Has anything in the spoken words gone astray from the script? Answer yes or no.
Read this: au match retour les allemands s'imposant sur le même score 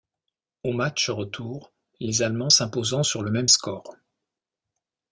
no